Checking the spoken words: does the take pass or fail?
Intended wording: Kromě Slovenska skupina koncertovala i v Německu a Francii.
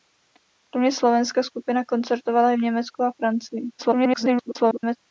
fail